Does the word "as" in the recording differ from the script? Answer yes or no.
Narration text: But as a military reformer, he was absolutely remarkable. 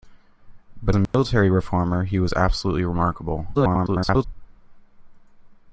yes